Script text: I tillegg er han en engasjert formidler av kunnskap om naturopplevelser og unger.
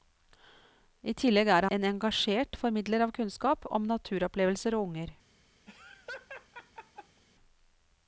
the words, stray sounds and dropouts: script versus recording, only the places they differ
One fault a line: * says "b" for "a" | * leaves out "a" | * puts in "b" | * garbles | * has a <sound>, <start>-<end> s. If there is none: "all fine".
* leaves out "han"
* has a laugh, 5.7-7.2 s